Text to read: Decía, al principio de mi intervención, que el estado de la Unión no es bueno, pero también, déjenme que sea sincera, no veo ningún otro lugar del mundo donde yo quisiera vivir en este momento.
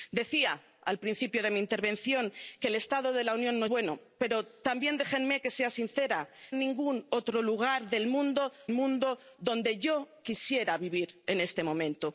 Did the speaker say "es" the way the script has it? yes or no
no